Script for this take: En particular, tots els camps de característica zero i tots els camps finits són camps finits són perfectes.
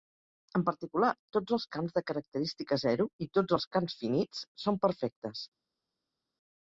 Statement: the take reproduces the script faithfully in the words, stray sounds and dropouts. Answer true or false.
false